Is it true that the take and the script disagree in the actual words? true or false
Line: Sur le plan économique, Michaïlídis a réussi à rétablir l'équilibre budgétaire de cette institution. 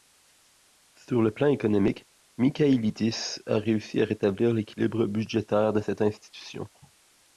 false